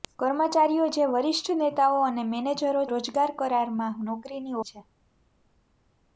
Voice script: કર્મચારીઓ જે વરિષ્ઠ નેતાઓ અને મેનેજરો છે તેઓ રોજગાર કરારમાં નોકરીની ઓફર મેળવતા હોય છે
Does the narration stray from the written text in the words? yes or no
yes